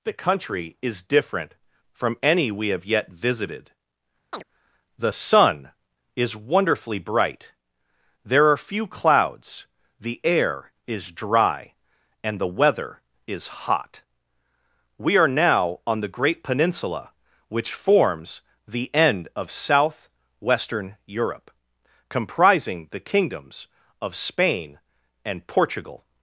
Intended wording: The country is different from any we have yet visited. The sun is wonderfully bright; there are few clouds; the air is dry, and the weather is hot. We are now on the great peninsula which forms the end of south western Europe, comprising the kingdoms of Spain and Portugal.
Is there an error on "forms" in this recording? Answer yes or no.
no